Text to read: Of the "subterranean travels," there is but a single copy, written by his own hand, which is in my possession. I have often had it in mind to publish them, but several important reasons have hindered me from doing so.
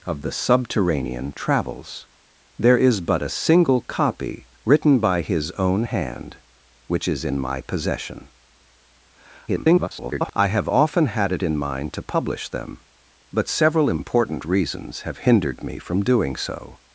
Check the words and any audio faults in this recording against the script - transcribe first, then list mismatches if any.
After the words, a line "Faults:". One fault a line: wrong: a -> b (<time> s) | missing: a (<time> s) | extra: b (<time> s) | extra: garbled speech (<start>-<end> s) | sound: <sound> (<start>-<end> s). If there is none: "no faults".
Of the "subterranean travels," there is but a single copy, written by his own hand, which is in my possession. [garbled] I have often had it in mind to publish them, but several important reasons have hindered me from doing so.
Faults:
extra: garbled speech (9.5-10.3 s)